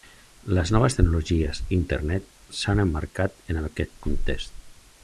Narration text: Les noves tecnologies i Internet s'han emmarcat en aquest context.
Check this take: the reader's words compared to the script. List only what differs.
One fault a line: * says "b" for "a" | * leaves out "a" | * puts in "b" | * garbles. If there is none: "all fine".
all fine